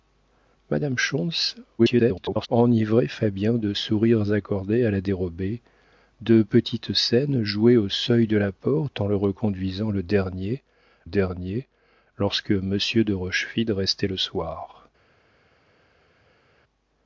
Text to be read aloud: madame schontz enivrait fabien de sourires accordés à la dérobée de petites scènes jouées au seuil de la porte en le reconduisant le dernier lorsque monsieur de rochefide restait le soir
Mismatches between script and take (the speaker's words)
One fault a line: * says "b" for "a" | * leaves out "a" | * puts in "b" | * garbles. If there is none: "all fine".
* garbles
* puts in "dernier"